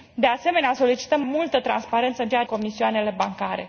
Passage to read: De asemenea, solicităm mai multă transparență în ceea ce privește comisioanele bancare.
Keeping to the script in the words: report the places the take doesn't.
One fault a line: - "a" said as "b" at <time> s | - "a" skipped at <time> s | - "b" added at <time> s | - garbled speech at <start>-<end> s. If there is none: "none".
- "mai" skipped at 1.2 s
- "ce privește" skipped at 2.4 s